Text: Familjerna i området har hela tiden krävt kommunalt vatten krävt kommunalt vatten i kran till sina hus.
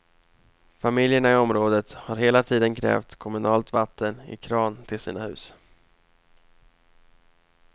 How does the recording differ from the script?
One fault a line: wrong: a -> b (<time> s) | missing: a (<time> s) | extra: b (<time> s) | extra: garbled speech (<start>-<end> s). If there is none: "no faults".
missing: krävt kommunalt vatten (4.2 s)